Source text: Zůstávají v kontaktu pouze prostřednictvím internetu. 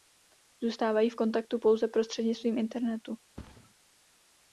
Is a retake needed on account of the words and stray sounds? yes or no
yes